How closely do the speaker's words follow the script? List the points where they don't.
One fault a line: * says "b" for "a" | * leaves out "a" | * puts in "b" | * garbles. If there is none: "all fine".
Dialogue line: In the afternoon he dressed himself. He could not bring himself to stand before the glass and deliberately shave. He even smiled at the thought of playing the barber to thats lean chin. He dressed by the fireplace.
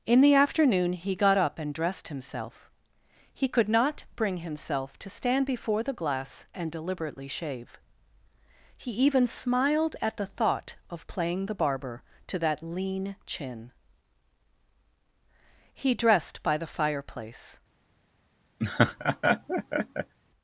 * puts in "got up and"
* says "that" for "thats"